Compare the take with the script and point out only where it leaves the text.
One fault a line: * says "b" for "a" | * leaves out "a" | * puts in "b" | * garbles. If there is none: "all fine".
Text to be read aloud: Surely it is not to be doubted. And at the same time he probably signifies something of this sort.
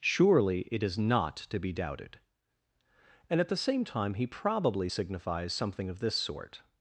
all fine